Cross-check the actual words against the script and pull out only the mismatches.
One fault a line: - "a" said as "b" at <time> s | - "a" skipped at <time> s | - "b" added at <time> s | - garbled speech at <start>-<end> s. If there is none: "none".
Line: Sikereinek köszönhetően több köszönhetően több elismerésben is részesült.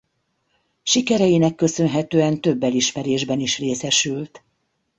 - "köszönhetően több" skipped at 2.6 s